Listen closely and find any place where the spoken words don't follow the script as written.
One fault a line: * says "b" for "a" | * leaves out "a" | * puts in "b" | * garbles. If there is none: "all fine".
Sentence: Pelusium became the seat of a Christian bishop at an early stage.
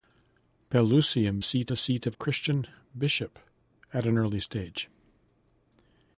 * says "seat" for "became"
* leaves out "a"